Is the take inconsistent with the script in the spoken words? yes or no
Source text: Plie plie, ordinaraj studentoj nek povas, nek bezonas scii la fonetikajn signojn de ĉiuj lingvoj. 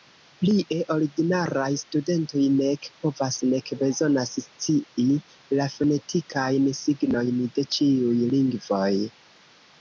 yes